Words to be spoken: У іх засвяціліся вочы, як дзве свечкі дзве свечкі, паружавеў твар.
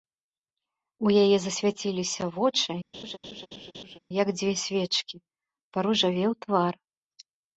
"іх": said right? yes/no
no